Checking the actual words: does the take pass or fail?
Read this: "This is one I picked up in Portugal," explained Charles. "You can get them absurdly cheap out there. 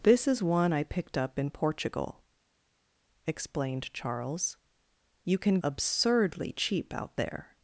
fail